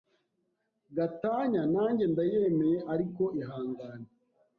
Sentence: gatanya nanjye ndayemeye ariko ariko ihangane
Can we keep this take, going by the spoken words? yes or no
no